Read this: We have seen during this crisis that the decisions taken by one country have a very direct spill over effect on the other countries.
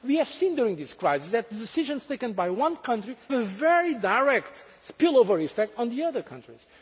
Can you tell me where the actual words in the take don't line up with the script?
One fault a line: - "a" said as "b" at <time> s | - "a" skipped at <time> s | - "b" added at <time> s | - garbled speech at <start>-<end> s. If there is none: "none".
- "have" skipped at 3.2 s